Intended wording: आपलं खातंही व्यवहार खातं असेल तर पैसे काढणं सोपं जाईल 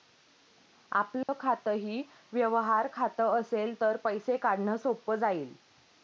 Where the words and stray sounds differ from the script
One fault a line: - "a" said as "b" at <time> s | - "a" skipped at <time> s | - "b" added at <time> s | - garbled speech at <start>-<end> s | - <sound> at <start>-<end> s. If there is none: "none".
- dropout at 1.2-1.3 s